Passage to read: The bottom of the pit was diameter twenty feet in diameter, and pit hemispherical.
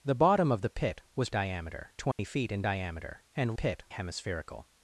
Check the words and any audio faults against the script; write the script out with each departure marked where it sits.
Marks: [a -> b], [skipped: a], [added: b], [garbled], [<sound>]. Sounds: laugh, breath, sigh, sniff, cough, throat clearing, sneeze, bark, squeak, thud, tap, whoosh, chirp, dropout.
The bottom of the pit was diameter twenty [dropout] feet in diameter, and pit hemispherical.